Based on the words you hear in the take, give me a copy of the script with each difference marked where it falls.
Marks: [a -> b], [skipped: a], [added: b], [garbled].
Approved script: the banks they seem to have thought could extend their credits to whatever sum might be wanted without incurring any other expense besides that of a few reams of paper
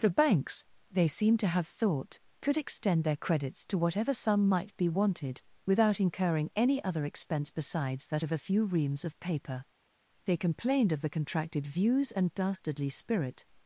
the banks they seem to have thought could extend their credits to whatever sum might be wanted without incurring any other expense besides that of a few reams of paper [added: they complained of the contracted views and dastardly spirit]